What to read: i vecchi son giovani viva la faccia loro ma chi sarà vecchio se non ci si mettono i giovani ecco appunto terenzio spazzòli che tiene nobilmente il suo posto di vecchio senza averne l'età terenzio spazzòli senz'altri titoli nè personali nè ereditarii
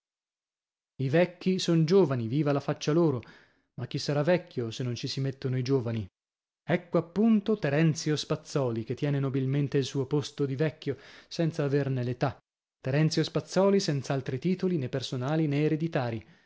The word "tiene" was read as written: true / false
true